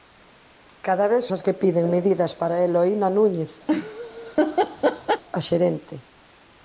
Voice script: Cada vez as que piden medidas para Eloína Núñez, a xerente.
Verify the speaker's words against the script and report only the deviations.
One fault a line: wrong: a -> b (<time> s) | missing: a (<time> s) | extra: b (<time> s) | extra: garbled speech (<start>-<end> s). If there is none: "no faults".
no faults